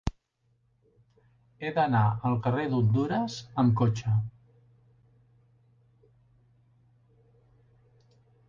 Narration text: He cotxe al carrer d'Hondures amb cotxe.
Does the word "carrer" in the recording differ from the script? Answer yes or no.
no